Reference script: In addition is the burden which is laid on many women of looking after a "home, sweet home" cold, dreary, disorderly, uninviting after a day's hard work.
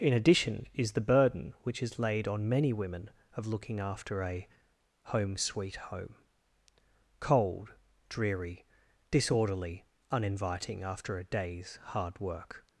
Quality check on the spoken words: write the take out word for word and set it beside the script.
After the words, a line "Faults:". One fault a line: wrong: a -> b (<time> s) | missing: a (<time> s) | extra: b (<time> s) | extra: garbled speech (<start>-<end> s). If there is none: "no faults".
In addition is the burden which is laid on many women of looking after a "home, sweet home" cold, dreary, disorderly, uninviting after a day's hard work.
Faults:
no faults